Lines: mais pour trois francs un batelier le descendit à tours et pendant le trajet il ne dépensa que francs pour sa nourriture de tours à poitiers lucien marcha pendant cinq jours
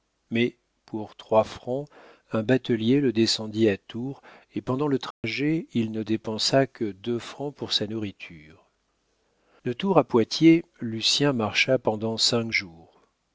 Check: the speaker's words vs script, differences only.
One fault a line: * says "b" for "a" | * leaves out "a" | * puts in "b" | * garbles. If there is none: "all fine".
* puts in "deux"